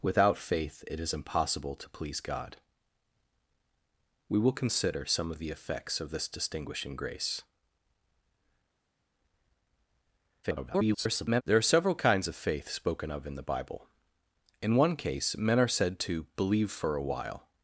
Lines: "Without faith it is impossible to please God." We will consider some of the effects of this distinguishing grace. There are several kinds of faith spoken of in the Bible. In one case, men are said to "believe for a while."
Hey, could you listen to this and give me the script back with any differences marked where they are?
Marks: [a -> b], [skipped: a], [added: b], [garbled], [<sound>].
"Without faith it is impossible to please God." We will consider some of the effects of this distinguishing grace. [garbled] There are several kinds of faith spoken of in the Bible. In one case, men are said to "believe for a while."